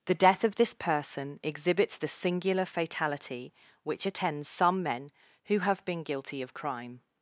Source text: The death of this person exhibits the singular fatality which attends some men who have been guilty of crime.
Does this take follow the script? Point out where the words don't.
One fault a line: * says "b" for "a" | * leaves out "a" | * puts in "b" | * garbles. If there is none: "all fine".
all fine